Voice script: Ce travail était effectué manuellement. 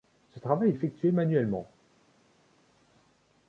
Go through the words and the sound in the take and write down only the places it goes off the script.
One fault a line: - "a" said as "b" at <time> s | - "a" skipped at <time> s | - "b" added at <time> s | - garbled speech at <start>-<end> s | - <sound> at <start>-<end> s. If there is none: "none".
- "était" skipped at 0.7 s